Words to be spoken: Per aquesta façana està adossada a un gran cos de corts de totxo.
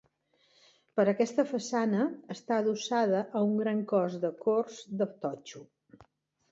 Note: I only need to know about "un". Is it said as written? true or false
true